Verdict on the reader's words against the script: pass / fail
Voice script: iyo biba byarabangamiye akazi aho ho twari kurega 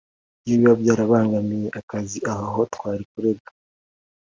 pass